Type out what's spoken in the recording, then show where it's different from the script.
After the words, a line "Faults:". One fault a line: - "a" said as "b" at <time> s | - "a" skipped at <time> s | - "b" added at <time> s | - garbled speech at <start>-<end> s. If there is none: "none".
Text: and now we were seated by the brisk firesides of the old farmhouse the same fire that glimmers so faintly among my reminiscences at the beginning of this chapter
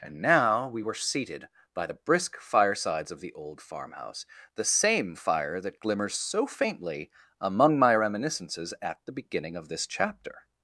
and now we were seated by the brisk firesides of the old farmhouse the same fire that glimmers so faintly among my reminiscences at the beginning of this chapter
Faults:
none